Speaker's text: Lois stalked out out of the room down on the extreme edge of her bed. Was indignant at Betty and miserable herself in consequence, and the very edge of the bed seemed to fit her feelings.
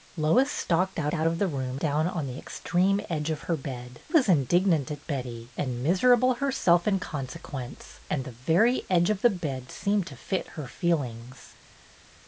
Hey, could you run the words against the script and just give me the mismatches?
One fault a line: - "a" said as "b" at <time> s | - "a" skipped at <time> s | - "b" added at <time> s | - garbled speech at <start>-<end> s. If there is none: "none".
none